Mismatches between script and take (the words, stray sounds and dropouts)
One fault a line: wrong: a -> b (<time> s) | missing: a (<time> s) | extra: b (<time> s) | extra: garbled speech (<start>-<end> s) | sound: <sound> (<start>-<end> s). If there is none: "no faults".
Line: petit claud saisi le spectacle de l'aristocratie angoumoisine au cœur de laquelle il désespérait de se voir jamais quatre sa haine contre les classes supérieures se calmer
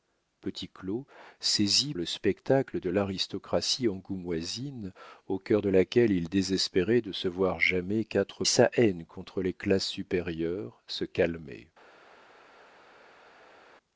no faults